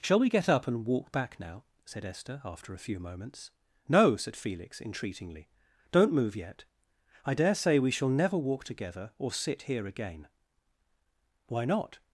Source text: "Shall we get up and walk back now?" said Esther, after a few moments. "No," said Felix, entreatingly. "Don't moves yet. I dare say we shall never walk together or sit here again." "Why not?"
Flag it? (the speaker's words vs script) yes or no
yes